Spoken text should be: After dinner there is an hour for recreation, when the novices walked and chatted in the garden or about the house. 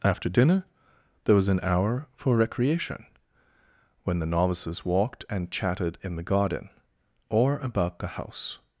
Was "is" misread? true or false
true